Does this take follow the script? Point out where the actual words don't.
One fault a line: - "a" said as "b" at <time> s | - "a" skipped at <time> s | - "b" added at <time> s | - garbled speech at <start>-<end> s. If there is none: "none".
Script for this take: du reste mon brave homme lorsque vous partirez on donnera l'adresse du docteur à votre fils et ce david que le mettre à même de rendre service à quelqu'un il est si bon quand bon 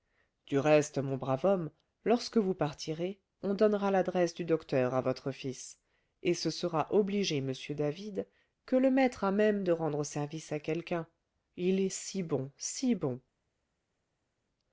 - "sera obliger m" added at 6.5 s
- "quand" said as "si" at 12.6 s